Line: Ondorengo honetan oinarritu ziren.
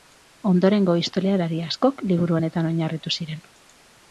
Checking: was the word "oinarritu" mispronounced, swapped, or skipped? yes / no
no